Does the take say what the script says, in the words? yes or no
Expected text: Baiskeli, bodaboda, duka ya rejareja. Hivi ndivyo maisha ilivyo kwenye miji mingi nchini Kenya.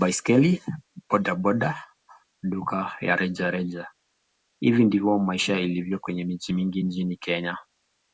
yes